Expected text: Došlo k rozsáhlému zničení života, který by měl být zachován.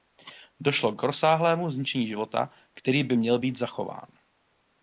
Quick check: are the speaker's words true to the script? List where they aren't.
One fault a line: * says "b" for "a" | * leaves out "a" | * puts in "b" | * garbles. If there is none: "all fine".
all fine